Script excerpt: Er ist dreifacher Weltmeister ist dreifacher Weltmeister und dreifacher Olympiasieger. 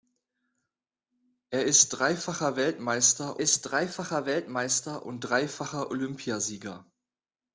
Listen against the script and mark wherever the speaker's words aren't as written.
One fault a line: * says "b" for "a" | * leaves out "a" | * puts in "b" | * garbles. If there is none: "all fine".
all fine